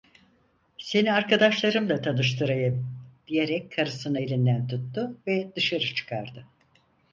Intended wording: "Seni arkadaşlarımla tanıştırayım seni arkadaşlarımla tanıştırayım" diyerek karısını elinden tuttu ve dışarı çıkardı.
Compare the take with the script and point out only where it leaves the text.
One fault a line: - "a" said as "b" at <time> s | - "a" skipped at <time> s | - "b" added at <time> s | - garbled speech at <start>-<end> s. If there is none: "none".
- "seni arkadaşlarımla tanıştırayım" skipped at 2.9 s